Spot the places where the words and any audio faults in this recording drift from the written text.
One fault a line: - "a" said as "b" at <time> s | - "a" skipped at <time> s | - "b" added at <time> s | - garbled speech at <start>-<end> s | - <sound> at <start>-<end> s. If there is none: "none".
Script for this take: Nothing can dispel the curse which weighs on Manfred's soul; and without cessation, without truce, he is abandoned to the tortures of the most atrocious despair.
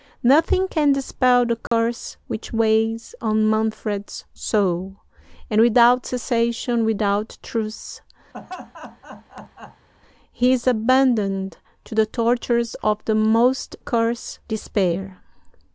- dropout at 1.7-1.7 s
- laugh at 8.3-9.9 s
- "atrocious" said as "curse" at 13.8 s